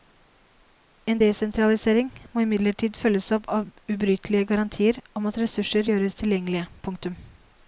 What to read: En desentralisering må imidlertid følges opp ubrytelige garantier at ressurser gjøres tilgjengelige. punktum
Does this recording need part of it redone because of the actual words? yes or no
yes